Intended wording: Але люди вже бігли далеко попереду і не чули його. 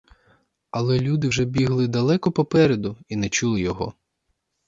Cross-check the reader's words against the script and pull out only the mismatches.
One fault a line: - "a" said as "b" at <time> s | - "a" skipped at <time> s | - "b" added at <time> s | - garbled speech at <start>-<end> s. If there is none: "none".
none